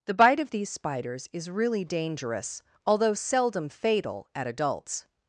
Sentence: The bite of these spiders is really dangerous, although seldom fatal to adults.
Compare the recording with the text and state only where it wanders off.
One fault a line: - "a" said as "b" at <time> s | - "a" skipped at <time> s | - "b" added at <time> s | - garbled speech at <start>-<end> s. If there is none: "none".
- "to" said as "at" at 4.3 s